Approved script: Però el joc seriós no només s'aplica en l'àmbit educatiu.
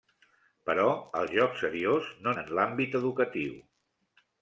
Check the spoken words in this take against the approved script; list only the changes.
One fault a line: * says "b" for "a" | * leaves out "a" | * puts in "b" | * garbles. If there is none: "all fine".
* leaves out "només s'aplica"